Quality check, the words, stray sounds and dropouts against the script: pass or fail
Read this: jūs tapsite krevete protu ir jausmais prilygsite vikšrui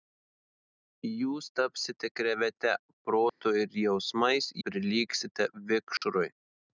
fail